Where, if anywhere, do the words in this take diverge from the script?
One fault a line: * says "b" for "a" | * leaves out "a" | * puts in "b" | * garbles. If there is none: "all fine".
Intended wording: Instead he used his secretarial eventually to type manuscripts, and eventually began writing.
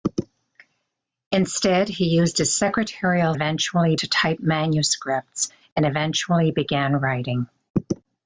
all fine